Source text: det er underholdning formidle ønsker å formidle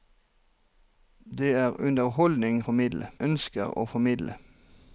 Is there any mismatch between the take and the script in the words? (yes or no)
no